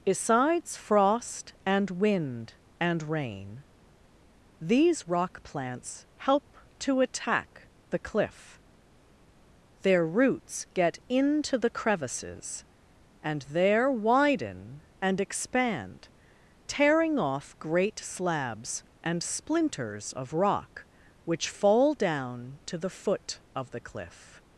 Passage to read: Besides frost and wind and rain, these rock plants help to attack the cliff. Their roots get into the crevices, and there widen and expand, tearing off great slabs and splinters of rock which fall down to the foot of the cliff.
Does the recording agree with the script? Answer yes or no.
yes